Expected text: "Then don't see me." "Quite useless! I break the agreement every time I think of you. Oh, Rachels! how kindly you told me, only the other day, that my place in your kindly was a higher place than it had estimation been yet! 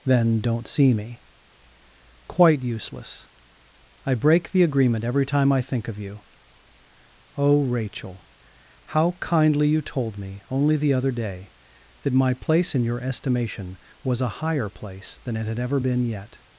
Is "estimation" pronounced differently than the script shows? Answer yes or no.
yes